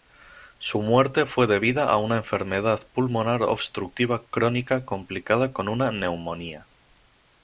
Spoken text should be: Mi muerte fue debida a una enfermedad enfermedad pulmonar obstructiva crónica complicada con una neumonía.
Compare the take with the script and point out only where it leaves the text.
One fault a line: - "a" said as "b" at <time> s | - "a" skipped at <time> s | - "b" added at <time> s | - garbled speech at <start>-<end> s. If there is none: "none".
- "Mi" said as "Su" at 0.6 s
- "enfermedad" skipped at 2.8 s